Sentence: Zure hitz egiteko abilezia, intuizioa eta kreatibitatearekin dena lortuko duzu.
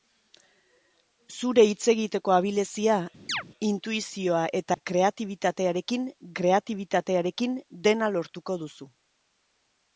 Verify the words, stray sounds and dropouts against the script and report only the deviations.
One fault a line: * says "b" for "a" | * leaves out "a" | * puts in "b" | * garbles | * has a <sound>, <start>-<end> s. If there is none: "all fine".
* has a chirp, 3.3-3.4 s
* has a dropout, 4.7-4.8 s
* puts in "kreatibitatearekin"